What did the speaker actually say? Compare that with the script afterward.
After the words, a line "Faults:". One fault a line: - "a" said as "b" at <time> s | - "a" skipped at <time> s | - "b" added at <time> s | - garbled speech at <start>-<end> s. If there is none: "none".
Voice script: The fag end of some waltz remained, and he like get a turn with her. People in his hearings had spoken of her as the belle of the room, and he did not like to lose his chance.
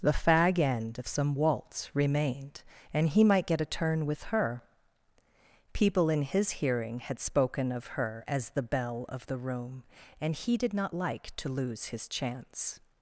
The fag end of some waltz remained, and he might get a turn with her. People in his hearing had spoken of her as the belle of the room, and he did not like to lose his chance.
Faults:
- "like" said as "might" at 3.2 s
- "hearings" said as "hearing" at 6.5 s